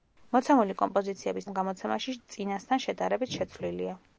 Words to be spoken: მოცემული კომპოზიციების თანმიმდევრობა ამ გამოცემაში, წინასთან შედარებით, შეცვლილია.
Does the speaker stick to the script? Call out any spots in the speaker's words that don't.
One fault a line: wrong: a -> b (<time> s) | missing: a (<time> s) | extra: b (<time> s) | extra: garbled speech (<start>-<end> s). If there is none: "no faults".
missing: თანმიმდევრობა (1.5 s)